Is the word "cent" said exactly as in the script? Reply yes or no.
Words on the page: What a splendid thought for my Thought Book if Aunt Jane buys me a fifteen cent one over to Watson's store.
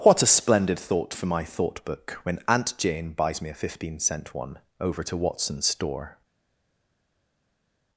yes